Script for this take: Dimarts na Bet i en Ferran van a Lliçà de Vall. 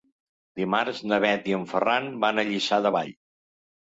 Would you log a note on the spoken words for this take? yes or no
no